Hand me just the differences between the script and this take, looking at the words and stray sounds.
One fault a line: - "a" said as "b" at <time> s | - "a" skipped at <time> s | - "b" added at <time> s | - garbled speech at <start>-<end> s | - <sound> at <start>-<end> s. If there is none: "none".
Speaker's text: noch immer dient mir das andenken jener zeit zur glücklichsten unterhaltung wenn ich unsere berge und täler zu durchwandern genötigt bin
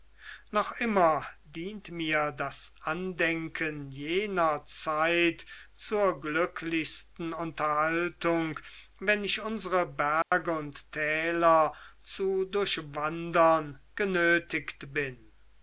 - dropout at 10.2-10.3 s